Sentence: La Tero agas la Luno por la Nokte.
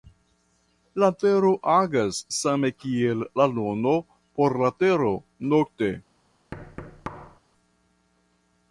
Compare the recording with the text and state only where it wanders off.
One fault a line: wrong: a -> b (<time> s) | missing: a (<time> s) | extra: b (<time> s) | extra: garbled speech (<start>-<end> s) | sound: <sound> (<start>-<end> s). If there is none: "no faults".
extra: same kiel (2.4 s)
extra: Tero (4.9 s)
sound: thud (6.5-7.4 s)